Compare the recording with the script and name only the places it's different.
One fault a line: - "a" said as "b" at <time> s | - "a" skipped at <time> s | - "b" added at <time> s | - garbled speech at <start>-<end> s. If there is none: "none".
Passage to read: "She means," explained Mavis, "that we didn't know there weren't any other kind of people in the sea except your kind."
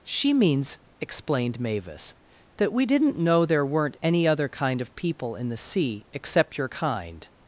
none